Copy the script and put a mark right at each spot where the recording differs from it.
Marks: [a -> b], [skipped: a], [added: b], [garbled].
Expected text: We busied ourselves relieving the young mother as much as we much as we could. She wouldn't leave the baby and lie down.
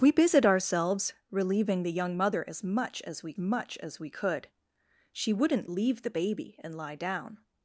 We busied ourselves relieving the young mother as much as we much as we could. She wouldn't leave the baby and lie down.